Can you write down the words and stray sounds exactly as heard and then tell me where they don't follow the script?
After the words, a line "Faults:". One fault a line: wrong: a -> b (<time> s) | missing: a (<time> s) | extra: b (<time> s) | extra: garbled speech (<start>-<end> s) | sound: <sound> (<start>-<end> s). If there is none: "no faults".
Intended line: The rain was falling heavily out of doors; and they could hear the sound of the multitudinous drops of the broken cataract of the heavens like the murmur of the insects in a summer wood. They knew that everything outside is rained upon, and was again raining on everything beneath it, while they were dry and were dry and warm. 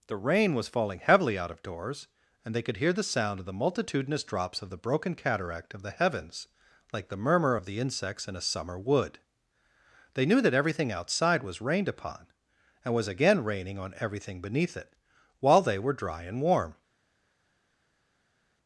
The rain was falling heavily out of doors; and they could hear the sound of the multitudinous drops of the broken cataract of the heavens like the murmur of the insects in a summer wood. They knew that everything outside was rained upon, and was again raining on everything beneath it, while they were dry and warm.
Faults:
wrong: is -> was (11.4 s)
missing: were dry and (16.4 s)